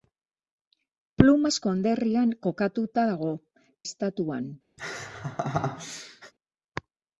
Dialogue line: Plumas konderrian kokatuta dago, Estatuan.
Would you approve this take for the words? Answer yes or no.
yes